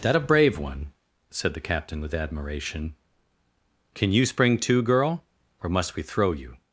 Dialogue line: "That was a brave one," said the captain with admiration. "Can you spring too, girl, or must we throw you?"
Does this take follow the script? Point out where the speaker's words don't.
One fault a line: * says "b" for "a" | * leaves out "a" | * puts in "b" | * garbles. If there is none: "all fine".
* leaves out "was"